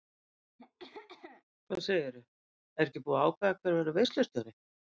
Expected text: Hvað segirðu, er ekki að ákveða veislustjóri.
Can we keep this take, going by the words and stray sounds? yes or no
no